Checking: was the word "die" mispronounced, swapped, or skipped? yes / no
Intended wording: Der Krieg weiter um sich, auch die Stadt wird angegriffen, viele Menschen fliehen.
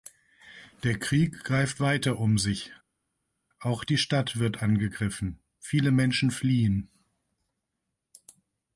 no